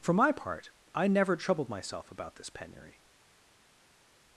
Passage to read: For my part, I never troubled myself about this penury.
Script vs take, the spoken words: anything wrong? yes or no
no